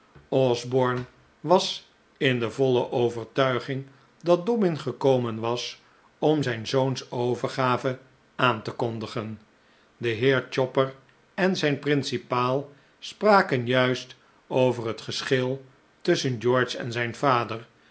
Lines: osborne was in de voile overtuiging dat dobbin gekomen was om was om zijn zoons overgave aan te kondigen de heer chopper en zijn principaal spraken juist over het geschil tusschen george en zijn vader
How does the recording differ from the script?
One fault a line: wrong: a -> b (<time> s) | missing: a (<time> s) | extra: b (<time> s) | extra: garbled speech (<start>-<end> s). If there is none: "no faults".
missing: was om (6.4 s)